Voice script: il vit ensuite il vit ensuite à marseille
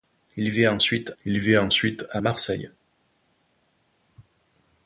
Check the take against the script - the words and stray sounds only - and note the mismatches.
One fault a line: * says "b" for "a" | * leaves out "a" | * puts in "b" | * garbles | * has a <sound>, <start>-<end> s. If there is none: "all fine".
all fine